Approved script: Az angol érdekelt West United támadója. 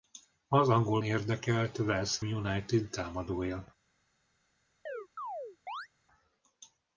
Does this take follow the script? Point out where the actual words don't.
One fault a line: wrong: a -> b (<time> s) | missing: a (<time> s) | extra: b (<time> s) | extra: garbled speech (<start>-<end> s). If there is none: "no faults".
no faults